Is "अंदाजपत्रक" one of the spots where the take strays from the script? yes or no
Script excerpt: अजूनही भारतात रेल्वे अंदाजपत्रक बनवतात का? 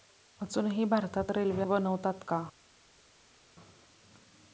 yes